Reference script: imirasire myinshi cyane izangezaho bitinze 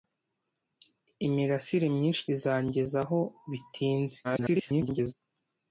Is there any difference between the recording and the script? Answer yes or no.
yes